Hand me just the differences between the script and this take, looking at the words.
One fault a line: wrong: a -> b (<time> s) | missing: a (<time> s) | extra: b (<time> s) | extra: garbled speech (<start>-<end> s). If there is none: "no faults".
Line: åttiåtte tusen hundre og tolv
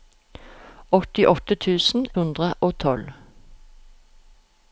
no faults